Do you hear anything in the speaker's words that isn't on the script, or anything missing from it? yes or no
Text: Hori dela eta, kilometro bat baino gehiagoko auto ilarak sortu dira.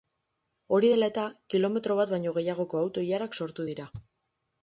no